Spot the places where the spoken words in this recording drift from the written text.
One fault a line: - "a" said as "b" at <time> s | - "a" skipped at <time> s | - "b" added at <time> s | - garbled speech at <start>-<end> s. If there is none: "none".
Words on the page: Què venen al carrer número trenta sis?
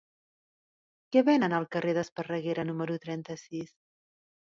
- "d'Esparreguera" added at 2.0 s